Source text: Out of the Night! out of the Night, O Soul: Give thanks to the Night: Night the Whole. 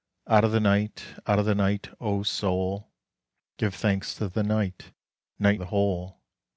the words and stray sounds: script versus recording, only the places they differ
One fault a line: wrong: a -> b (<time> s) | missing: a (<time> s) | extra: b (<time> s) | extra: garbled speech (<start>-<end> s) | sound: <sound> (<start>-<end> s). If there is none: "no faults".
no faults